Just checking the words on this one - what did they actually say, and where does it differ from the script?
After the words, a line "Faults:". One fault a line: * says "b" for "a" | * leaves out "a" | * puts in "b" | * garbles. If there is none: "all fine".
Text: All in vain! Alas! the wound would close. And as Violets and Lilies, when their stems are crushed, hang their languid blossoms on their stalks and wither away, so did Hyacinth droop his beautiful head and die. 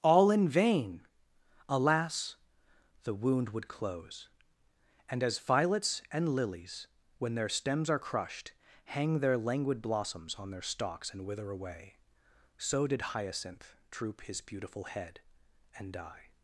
All in vain! Alas! the wound would close. And as Violets and Lilies, when their stems are crushed, hang their languid blossoms on their stalks and wither away, so did Hyacinth droop his beautiful head and die.
Faults:
all fine